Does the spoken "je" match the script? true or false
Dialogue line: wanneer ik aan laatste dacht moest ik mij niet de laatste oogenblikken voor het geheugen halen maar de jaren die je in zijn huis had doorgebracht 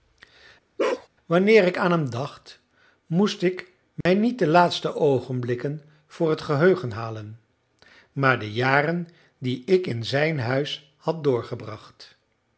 false